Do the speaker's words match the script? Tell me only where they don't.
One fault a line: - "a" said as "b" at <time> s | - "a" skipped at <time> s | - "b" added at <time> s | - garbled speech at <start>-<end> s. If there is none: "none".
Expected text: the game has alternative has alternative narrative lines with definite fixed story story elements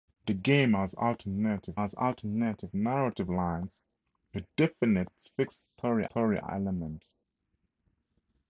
none